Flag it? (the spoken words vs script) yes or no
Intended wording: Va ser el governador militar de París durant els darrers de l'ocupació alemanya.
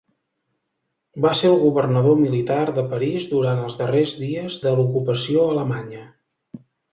yes